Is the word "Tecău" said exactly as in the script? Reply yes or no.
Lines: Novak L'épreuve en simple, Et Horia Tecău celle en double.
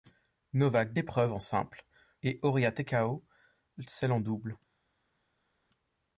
yes